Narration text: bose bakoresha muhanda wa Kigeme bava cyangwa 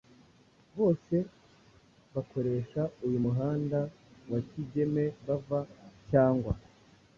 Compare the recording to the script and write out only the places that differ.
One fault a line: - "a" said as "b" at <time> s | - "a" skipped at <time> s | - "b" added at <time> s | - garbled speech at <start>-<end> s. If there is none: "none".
- "uyu" added at 3.0 s